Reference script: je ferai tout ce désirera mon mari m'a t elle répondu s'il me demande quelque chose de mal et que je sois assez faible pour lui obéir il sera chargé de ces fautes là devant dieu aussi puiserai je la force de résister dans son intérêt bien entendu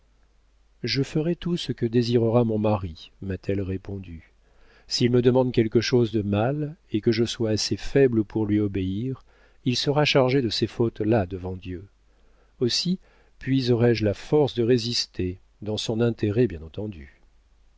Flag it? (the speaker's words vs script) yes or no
yes